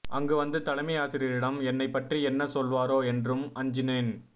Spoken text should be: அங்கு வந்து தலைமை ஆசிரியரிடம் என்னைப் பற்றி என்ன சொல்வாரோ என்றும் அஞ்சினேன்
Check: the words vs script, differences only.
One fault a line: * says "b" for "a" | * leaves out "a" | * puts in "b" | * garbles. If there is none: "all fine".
all fine